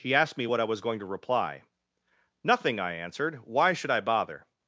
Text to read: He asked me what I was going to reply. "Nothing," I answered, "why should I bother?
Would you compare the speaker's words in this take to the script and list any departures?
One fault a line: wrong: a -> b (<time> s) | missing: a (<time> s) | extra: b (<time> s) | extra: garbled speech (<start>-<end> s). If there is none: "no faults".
no faults